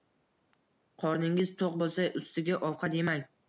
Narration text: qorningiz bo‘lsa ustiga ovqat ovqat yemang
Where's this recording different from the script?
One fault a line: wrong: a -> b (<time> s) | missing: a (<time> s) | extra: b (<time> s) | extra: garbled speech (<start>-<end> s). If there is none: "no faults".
extra: to‘q (1.6 s)
missing: ovqat (3.0 s)